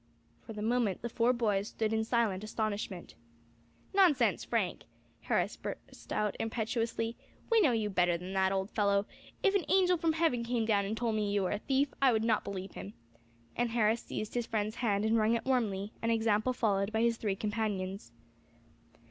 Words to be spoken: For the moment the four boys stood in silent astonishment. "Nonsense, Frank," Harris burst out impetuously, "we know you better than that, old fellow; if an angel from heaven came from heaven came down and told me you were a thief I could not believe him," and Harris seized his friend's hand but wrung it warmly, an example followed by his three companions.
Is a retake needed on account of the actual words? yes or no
yes